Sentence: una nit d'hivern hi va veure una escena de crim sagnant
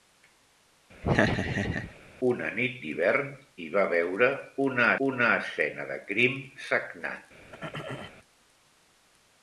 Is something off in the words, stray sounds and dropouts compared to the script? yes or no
yes